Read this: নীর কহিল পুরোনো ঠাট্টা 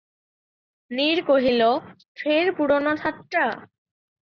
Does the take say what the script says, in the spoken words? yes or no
no